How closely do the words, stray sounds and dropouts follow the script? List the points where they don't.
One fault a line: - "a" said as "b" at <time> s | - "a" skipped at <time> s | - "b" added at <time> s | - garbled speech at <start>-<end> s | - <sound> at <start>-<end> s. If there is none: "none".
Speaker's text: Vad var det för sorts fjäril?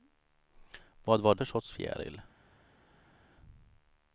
- "det" skipped at 1.4 s